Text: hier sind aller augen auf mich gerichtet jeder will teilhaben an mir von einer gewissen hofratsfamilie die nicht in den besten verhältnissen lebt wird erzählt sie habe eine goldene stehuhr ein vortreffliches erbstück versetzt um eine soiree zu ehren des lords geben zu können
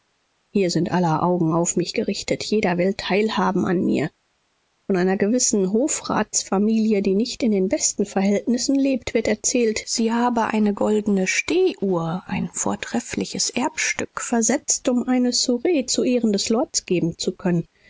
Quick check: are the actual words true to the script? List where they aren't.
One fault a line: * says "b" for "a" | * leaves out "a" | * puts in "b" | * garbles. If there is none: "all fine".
all fine